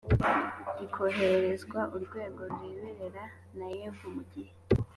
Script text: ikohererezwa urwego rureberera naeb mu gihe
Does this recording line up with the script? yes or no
yes